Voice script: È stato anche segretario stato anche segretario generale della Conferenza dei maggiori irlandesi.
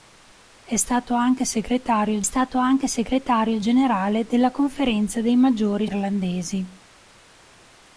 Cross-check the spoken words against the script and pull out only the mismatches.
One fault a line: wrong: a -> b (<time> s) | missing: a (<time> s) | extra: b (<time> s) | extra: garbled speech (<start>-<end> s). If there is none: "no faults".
no faults